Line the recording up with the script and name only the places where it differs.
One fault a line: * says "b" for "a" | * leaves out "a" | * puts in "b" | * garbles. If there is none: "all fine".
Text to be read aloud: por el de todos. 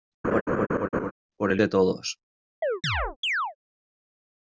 all fine